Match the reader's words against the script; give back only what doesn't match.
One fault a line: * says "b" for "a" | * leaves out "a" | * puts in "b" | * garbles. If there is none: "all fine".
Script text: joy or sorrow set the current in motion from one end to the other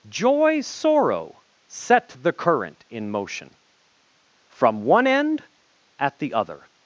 * leaves out "or"
* says "at" for "to"